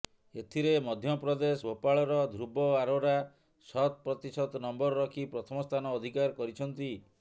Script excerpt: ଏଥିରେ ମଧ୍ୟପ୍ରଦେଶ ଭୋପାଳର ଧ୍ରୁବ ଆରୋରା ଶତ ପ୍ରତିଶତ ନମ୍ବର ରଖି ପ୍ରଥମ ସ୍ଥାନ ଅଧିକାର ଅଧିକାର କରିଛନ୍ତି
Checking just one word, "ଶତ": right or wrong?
right